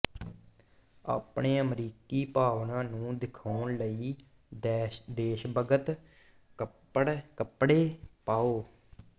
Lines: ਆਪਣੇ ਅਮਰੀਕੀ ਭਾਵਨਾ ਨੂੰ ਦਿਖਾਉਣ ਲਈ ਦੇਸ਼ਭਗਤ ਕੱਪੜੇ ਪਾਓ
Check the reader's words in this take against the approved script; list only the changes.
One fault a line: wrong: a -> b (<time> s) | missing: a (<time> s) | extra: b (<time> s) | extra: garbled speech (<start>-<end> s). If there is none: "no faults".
no faults